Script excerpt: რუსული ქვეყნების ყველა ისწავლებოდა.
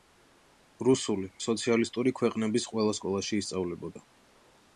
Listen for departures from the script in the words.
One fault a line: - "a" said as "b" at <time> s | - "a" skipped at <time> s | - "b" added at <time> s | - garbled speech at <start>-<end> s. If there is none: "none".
- "სოციალისტური" added at 1.5 s
- "სკოლაში" added at 3.0 s